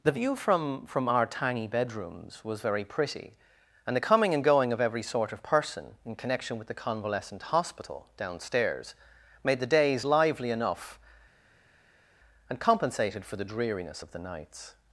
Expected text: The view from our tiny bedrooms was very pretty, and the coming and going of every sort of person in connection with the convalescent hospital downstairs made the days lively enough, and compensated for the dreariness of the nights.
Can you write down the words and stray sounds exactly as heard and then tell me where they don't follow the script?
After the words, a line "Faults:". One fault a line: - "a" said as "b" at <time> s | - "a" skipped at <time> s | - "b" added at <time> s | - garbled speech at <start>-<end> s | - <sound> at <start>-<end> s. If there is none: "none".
The view from from our tiny bedrooms was very pretty, and the coming and going of every sort of person in connection with the convalescent hospital downstairs made the days lively enough, and compensated for the dreariness of the nights.
Faults:
- "from" added at 0.9 s